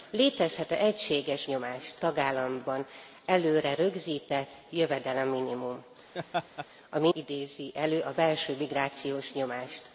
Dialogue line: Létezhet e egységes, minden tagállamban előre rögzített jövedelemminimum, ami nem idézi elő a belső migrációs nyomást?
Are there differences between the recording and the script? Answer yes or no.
yes